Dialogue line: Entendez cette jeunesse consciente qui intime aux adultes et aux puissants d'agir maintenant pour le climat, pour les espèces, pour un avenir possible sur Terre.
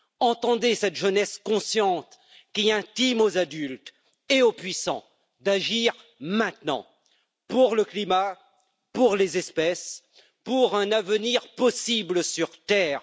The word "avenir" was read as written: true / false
true